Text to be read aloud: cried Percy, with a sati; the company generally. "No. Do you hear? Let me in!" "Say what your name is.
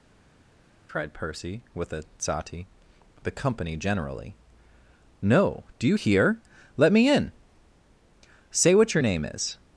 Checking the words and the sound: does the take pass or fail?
pass